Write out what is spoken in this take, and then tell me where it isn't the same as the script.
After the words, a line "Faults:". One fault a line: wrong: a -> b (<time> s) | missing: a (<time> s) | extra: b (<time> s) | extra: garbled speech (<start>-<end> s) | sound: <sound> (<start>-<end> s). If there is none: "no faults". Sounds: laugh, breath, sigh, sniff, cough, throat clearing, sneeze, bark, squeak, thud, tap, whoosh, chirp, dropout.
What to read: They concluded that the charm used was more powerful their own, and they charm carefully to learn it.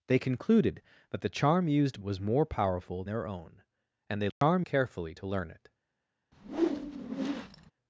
They concluded that the charm used was more powerful their own, and they charm carefully to learn it.
Faults:
sound: dropout (4.3-4.4 s)
sound: whoosh (6.3-7.7 s)